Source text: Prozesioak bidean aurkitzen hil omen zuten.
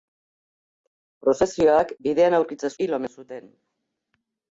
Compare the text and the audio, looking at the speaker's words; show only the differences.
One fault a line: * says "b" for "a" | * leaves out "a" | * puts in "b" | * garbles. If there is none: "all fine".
all fine